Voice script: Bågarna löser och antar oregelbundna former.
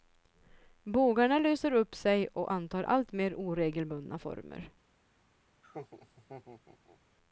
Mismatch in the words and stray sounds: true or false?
true